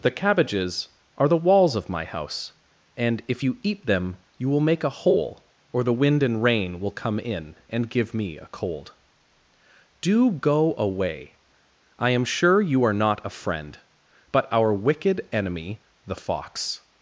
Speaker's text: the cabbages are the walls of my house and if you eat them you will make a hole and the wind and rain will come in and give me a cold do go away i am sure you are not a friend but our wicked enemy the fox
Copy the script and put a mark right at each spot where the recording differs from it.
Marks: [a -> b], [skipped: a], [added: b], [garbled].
the cabbages are the walls of my house and if you eat them you will make a hole [and -> or] the wind and rain will come in and give me a cold do go away i am sure you are not a friend but our wicked enemy the fox